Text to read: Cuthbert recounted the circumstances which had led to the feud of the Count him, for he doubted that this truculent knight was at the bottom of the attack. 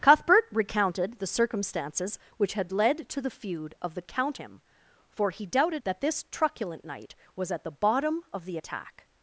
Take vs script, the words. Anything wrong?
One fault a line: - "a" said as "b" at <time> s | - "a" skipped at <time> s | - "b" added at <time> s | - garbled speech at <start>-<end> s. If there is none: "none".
none